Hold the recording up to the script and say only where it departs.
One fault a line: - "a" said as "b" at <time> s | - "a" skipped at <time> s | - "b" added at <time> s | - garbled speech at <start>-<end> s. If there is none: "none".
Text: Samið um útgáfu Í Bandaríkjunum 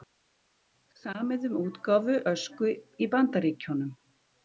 - "Ösku" added at 2.3 s